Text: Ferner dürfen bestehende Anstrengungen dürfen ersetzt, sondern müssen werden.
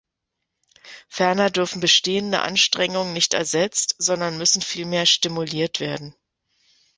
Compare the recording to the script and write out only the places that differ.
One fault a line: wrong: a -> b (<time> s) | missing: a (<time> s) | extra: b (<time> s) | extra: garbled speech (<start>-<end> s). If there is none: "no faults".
wrong: dürfen -> nicht (3.1 s)
extra: vielmehr stimuliert (4.6 s)